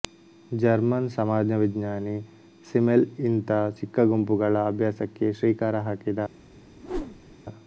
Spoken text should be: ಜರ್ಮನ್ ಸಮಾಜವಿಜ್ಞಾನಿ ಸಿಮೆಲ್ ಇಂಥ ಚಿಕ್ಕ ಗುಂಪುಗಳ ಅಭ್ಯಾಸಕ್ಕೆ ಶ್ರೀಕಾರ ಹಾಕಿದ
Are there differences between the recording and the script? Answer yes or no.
no